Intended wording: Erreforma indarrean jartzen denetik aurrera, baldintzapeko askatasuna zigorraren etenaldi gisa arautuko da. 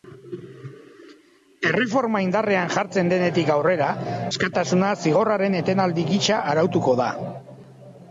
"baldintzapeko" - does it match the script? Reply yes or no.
no